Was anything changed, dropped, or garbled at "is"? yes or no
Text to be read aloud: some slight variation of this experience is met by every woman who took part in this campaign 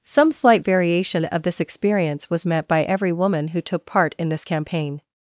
yes